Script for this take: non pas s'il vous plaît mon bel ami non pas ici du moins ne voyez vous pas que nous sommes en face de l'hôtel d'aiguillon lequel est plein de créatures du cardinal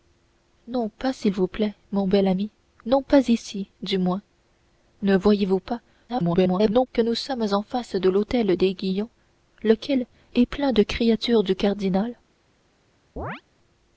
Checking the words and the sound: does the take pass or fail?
fail